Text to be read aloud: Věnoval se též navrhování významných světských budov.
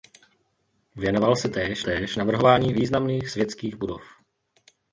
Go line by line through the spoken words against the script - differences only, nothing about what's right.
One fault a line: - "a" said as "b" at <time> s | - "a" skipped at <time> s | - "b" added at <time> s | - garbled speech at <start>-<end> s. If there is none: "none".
- "též" added at 1.8 s